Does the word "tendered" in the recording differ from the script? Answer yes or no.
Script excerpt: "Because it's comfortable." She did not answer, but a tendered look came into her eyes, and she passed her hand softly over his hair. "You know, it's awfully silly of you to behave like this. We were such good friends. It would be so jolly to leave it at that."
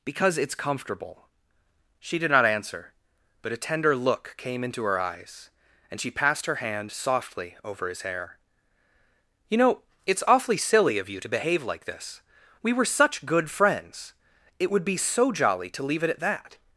yes